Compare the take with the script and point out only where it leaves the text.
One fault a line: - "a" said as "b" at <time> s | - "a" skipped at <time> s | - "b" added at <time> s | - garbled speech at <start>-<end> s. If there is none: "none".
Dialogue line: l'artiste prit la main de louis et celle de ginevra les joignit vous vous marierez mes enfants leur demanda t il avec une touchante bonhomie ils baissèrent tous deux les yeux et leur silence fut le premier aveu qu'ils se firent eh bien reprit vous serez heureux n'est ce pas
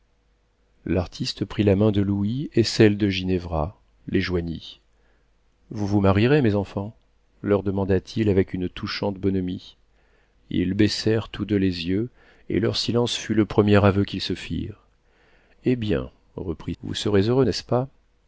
none